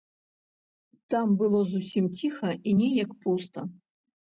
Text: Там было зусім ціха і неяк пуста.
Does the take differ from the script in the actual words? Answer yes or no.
no